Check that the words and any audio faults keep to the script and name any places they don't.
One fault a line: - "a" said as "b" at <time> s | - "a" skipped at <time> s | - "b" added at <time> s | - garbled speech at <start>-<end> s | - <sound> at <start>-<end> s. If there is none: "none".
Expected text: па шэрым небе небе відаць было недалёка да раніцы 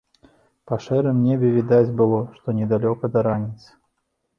- "небе" skipped at 1.5 s
- "што" added at 2.4 s